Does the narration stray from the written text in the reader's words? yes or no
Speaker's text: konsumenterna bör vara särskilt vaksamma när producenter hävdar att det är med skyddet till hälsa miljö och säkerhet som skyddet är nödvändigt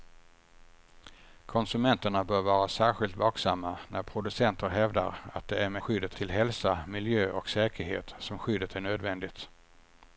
no